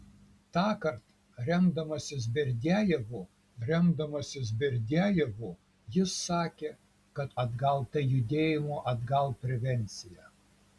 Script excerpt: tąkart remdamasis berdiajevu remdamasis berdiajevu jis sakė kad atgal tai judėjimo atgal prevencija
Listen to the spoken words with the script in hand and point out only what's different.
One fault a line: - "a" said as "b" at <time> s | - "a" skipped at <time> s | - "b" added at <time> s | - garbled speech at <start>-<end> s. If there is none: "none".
none